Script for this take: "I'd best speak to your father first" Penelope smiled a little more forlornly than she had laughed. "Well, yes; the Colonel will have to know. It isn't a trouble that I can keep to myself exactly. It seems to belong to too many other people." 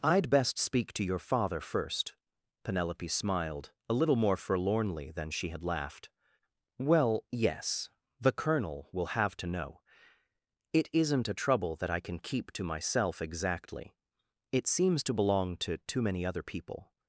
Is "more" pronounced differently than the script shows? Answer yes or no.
no